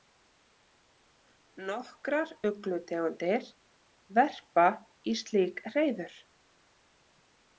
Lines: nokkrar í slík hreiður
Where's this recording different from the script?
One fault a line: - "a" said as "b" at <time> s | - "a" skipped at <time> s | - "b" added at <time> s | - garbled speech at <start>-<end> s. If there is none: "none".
- "uglutegundir verpa" added at 2.5 s